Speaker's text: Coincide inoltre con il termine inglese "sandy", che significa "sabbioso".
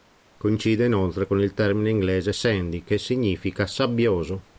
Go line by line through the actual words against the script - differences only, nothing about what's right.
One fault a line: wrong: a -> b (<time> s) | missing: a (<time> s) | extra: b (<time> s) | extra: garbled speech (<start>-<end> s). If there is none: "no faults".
no faults